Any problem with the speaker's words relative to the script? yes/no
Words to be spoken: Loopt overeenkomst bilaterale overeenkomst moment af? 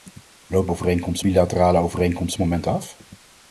no